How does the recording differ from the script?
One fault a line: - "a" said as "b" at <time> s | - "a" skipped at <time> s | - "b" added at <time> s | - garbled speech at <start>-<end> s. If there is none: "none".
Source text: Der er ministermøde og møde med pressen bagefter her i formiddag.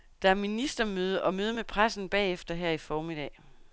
none